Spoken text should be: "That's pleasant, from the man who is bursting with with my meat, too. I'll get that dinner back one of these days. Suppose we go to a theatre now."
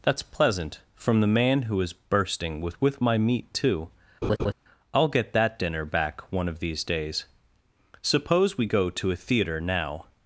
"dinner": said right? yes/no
yes